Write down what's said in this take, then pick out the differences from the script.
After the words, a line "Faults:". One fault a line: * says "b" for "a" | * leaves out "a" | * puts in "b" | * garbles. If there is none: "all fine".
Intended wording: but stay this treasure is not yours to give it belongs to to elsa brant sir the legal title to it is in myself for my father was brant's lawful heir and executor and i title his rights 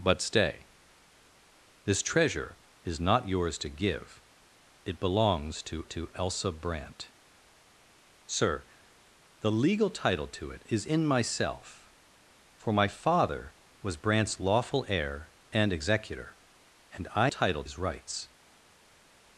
but stay this treasure is not yours to give it belongs to to elsa brant sir the legal title to it is in myself for my father was brant's lawful heir and executor and i title his rights
Faults:
all fine